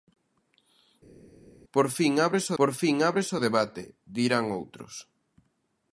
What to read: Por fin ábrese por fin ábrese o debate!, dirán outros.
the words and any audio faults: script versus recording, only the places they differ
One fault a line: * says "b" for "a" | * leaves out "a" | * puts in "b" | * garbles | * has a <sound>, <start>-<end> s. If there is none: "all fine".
all fine